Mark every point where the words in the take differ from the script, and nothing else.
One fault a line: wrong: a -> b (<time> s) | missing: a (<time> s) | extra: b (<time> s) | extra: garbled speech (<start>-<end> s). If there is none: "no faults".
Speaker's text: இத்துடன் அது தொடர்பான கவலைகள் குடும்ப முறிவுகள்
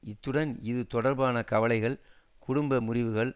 wrong: அது -> இது (0.6 s)